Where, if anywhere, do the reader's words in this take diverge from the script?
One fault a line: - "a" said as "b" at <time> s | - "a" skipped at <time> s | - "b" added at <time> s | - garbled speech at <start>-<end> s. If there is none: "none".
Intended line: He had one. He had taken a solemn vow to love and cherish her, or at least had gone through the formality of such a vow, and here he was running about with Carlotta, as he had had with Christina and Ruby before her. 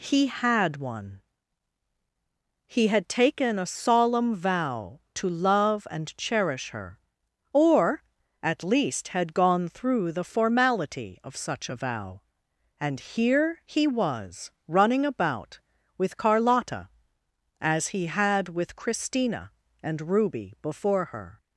- "had" skipped at 18.5 s